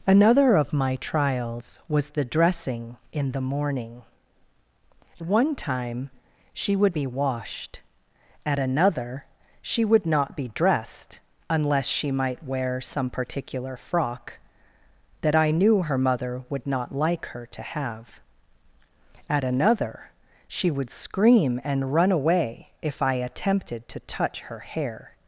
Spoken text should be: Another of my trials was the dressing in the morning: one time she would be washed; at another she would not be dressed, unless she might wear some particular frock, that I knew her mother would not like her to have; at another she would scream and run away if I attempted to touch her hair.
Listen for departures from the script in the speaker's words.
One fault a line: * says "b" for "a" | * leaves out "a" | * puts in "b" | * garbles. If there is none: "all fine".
all fine